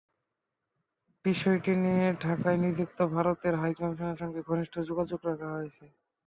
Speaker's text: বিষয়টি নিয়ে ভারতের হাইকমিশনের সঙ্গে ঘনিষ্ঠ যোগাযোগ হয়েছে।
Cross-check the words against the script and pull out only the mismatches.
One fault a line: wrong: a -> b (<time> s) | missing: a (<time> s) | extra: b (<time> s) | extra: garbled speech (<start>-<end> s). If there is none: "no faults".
extra: ঢাকায় নিযুক্ত (2.2 s)
extra: রাখা (5.3 s)